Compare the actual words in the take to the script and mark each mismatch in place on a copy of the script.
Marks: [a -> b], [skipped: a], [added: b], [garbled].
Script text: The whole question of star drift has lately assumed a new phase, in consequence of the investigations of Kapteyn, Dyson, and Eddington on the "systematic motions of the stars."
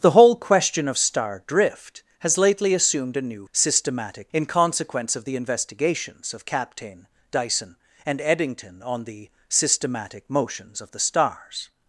The whole question of star drift has lately assumed a new [phase, -> systematic] in consequence of the investigations of Kapteyn, Dyson, and Eddington on the "systematic motions of the stars."